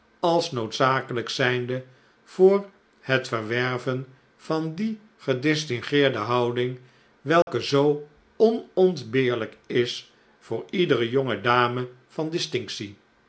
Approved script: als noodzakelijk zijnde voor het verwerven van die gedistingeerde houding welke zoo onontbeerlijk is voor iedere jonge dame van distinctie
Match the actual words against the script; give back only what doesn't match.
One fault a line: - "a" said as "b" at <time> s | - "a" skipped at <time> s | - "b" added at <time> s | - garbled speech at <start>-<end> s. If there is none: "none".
none